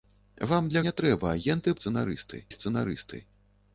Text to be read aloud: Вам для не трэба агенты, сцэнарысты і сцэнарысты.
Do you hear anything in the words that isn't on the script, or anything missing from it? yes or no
no